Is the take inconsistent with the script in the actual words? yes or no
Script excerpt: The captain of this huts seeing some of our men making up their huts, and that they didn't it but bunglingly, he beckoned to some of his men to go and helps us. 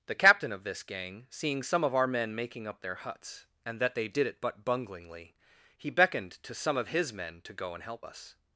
yes